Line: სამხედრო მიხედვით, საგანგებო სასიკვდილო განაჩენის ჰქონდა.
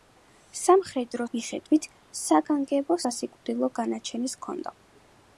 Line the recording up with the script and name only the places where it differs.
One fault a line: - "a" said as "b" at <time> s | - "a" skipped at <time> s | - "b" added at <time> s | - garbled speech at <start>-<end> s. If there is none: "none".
none